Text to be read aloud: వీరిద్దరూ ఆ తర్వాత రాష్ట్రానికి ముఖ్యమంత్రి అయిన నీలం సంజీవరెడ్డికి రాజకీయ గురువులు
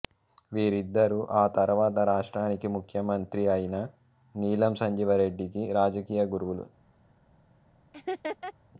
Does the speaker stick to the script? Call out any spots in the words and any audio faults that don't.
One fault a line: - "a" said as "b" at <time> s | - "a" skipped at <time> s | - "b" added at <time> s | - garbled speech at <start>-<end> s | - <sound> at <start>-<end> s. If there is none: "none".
- laugh at 7.9-8.5 s